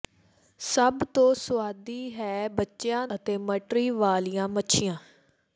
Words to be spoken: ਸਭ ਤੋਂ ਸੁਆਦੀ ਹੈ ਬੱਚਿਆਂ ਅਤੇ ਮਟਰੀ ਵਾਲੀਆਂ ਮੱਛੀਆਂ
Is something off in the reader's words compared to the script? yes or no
no